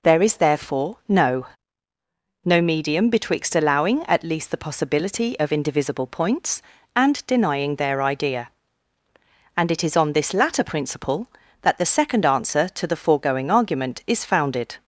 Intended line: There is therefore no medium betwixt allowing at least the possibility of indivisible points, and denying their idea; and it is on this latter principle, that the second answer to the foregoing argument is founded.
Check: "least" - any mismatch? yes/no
no